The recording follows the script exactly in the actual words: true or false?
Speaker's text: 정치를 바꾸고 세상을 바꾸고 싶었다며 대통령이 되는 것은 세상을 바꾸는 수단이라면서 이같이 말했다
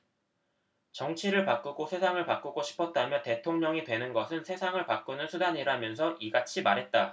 true